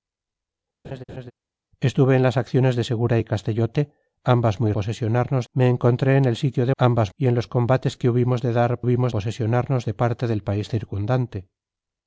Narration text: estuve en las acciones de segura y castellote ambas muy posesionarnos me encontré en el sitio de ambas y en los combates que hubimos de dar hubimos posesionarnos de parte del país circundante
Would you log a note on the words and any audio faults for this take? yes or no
yes